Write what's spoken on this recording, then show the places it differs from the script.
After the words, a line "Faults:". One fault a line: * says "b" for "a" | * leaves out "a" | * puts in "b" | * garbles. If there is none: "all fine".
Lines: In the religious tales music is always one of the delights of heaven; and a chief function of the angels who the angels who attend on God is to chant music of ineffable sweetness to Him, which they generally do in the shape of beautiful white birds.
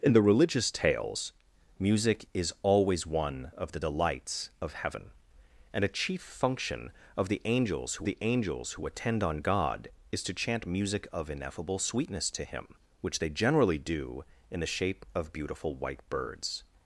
In the religious tales music is always one of the delights of heaven; and a chief function of the angels who the angels who attend on God is to chant music of ineffable sweetness to Him, which they generally do in the shape of beautiful white birds.
Faults:
all fine